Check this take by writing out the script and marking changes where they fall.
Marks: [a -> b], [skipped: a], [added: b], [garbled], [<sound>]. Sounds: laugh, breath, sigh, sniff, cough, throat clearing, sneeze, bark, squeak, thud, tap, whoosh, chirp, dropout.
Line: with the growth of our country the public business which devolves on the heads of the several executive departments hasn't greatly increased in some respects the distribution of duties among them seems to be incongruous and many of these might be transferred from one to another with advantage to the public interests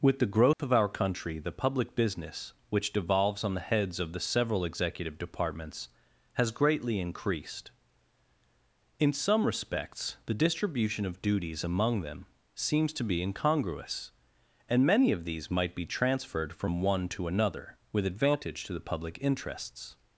with the growth [dropout] of our country the public business which devolves on the heads of the several executive departments [hasn't -> has] greatly increased in some respects the distribution of duties among them seems to be incongruous and many of these might be transferred from one to another with advantage to the public interests